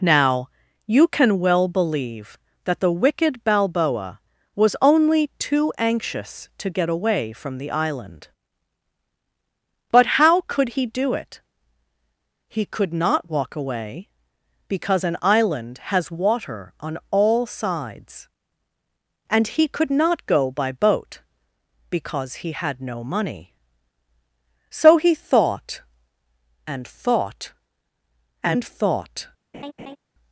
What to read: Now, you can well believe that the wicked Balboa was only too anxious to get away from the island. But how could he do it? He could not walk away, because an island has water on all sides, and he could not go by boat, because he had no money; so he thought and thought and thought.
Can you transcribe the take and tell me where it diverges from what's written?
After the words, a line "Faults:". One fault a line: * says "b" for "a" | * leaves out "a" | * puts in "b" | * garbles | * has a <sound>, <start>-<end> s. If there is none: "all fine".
Now, you can well believe that the wicked Balboa was only too anxious to get away from the island. But how could he do it? He could not walk away, because an island has water on all sides, and he could not go by boat, because he had no money; so he thought and thought and thought.
Faults:
* has a laugh, 29.5-30.0 s